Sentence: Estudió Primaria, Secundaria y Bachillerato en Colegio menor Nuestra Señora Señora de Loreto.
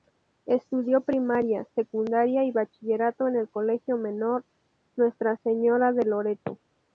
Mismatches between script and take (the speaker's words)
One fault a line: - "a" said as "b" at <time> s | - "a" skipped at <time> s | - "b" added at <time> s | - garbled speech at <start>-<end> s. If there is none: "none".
- "el" added at 3.4 s
- "Señora" skipped at 5.9 s